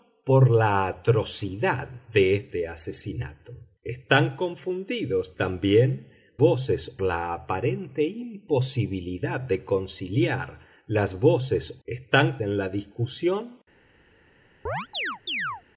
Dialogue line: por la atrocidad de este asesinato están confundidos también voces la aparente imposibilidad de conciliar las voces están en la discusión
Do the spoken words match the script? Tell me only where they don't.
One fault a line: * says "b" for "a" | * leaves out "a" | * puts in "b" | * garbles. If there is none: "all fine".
all fine